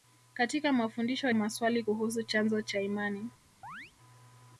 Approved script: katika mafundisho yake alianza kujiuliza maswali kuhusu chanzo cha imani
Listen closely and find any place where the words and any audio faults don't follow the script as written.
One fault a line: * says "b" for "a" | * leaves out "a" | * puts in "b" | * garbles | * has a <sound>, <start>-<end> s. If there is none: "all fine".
* leaves out "yake alianza kujiuliza"
* has a chirp, 3.6-3.9 s